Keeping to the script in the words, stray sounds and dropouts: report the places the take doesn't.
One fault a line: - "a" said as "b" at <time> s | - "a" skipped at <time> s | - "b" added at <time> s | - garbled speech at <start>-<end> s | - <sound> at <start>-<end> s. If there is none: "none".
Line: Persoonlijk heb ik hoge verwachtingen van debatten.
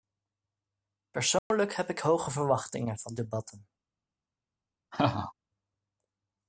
- dropout at 1.4-1.5 s
- laugh at 4.9-5.3 s